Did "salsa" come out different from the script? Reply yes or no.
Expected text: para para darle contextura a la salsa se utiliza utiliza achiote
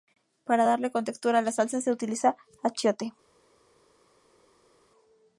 no